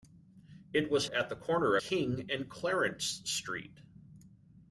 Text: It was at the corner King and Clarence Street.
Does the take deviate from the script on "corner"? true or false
false